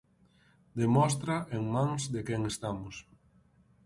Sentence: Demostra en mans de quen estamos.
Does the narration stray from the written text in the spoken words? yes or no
no